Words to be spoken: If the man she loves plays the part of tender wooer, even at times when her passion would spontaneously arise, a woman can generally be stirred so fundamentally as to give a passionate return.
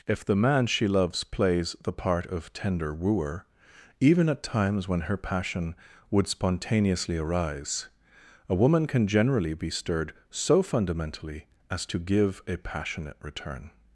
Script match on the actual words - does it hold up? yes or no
yes